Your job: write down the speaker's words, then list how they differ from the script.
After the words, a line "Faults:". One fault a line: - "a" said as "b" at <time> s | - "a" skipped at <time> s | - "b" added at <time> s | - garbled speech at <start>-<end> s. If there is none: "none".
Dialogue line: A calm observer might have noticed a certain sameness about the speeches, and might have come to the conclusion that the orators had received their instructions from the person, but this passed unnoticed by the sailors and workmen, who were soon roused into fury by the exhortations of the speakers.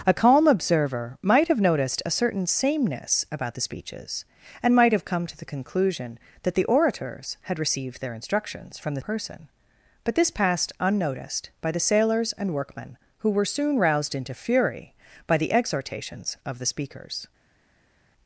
A calm observer might have noticed a certain sameness about the speeches, and might have come to the conclusion that the orators had received their instructions from the person, but this passed unnoticed by the sailors and workmen, who were soon roused into fury by the exhortations of the speakers.
Faults:
none